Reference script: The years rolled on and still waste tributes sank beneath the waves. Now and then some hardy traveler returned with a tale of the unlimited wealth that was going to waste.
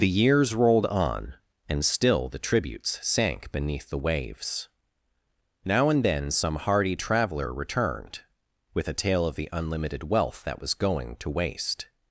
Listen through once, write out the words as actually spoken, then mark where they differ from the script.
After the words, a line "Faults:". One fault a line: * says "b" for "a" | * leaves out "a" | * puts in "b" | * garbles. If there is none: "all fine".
The years rolled on and still the tributes sank beneath the waves. Now and then some hardy traveler returned with a tale of the unlimited wealth that was going to waste.
Faults:
* says "the" for "waste"